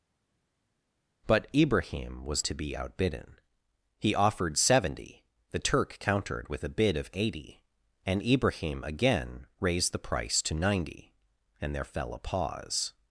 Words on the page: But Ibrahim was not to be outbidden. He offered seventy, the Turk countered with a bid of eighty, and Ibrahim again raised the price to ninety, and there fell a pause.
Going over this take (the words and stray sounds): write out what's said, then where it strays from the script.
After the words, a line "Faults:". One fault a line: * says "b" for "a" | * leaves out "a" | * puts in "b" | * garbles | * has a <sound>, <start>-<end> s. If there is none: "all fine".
But Ibrahim was to be outbidden. He offered seventy, the Turk countered with a bid of eighty, and Ibrahim again raised the price to ninety, and there fell a pause.
Faults:
* leaves out "not"